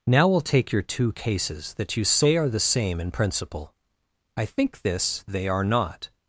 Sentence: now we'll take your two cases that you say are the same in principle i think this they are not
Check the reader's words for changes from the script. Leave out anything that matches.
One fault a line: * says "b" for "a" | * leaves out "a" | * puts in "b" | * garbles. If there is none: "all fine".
all fine